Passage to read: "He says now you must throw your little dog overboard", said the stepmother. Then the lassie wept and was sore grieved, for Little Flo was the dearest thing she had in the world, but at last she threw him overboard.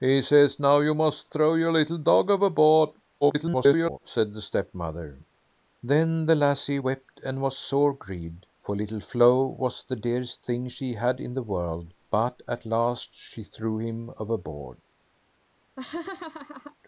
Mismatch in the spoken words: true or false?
true